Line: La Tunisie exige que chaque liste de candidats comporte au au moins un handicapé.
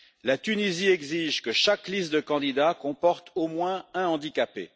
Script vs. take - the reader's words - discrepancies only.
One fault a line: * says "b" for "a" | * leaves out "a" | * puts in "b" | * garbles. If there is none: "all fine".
* leaves out "au"